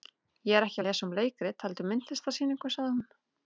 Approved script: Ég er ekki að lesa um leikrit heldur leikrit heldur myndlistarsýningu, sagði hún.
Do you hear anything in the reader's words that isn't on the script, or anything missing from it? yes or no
yes